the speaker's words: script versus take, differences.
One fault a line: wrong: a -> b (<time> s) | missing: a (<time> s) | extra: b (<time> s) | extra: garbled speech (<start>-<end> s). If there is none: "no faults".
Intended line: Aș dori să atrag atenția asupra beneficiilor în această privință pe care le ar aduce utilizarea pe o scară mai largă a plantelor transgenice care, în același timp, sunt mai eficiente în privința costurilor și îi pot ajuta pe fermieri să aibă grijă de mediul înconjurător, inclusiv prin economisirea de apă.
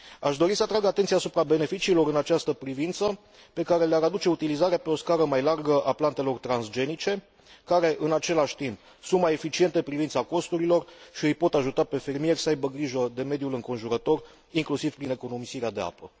no faults